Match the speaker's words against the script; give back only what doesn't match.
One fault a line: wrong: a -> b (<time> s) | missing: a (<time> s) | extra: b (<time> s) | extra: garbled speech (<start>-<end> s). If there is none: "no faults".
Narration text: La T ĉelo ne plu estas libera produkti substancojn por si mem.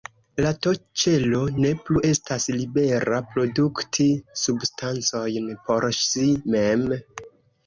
no faults